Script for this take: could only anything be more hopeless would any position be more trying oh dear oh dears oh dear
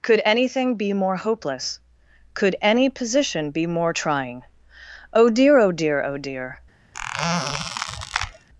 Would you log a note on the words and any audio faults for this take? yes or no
yes